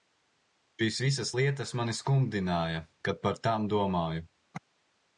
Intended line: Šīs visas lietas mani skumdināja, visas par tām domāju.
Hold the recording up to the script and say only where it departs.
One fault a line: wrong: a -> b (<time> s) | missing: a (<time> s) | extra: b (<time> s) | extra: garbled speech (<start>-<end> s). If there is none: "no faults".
wrong: visas -> kad (3.1 s)